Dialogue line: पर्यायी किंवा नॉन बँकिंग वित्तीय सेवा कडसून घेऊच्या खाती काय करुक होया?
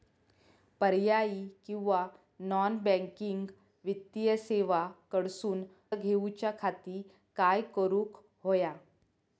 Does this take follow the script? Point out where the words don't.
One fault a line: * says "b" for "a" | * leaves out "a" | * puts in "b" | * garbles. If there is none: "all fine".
all fine